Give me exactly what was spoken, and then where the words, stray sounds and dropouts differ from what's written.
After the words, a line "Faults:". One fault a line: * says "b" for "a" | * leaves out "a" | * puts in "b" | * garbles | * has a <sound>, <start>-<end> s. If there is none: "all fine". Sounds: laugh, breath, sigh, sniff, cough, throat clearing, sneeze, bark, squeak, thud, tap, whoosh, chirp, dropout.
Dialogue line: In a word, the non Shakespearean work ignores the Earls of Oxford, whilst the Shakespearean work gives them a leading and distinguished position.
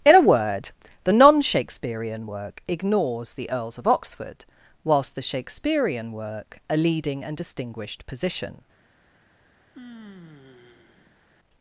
In a word, the non Shakespearean work ignores the Earls of Oxford, whilst the Shakespearean work a leading and distinguished position.
Faults:
* leaves out "gives them"
* has a sigh, 9.7-11.2 s